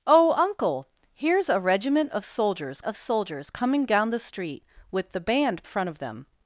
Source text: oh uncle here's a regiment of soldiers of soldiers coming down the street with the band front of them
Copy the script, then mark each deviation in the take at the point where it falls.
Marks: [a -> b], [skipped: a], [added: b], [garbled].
oh uncle here's a regiment of soldiers of soldiers coming down the street with the band front of them